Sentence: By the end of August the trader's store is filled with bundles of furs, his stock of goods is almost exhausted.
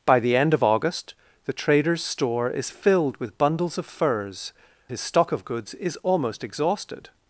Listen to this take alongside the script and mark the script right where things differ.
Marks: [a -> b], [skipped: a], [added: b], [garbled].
By the end of August the trader's store is filled with bundles of furs, his stock of goods is almost exhausted.